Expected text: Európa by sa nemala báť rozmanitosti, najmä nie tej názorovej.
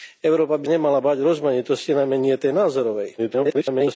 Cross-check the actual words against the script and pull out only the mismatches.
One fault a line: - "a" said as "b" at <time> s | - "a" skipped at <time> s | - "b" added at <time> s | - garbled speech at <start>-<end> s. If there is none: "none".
- "sa" skipped at 0.7 s
- garbled speech at 3.2-4.0 s